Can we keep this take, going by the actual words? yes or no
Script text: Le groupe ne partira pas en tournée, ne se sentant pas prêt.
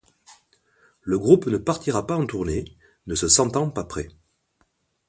yes